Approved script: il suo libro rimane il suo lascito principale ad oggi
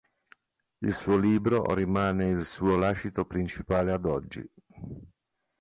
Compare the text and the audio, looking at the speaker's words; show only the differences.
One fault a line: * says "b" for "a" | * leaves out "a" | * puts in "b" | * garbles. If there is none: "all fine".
all fine